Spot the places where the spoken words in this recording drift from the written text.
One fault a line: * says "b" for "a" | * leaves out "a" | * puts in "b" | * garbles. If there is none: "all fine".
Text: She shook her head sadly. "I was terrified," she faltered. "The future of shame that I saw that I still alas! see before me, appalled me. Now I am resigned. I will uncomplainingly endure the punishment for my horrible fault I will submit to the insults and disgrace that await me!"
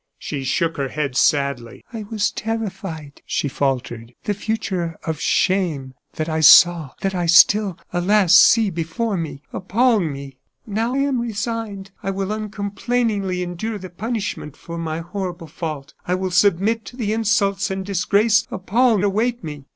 * leaves out "I"
* says "appalled" for "that"